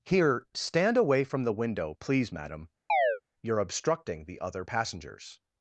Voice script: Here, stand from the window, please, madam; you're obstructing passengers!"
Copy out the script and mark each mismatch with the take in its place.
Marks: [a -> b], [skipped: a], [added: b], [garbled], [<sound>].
Here, stand [added: away] from the window, please, madam; [chirp] you're obstructing [added: the other] passengers!"